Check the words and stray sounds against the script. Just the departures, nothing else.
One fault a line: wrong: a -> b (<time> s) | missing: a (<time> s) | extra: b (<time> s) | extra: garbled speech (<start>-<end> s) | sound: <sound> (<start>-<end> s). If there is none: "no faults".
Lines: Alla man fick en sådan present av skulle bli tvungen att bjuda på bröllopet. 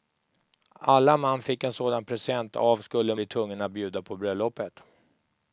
no faults